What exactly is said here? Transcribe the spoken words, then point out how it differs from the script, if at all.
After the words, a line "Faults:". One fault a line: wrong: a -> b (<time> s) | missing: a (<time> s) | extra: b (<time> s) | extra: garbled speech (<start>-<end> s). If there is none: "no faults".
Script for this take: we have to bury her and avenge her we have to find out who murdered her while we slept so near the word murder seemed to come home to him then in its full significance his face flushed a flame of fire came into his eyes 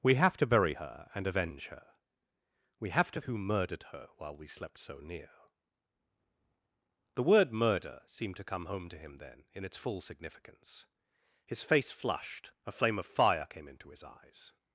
we have to bury her and avenge her we have to who murdered her while we slept so near the word murder seemed to come home to him then in its full significance his face flushed a flame of fire came into his eyes
Faults:
missing: find out (3.2 s)